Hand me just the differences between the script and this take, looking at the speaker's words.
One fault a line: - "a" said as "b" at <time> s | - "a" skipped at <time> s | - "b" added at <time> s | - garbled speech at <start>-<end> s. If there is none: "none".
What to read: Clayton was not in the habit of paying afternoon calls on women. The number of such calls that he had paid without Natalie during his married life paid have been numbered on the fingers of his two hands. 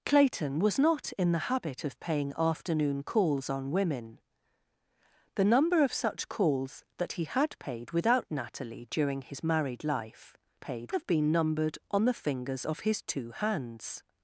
none